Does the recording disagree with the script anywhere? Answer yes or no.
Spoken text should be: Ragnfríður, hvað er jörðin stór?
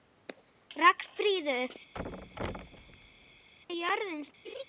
yes